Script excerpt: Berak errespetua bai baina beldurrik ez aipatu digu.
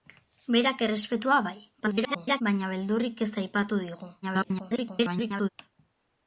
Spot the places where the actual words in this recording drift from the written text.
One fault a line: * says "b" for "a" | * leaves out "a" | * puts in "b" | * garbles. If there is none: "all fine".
* garbles
* garbles